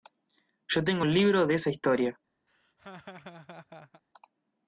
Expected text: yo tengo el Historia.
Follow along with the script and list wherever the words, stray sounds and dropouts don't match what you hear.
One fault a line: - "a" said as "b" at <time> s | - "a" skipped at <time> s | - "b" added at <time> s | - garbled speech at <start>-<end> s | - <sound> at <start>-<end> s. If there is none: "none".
- "libro de esa" added at 1.1 s
- laugh at 2.5-4.0 s